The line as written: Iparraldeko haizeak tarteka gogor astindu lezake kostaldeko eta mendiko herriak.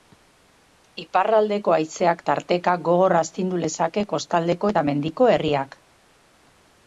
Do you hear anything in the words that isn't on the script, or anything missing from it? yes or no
no